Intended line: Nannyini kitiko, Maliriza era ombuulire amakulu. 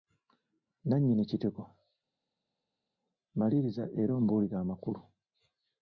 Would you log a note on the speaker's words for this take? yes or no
no